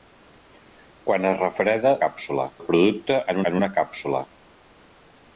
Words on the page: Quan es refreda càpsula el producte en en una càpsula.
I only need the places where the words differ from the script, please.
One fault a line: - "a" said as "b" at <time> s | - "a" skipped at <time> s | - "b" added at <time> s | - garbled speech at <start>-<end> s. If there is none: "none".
none